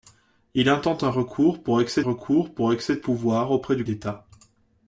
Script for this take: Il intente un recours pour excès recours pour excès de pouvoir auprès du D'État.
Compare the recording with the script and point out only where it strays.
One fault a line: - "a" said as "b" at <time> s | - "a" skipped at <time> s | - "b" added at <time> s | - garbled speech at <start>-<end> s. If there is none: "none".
none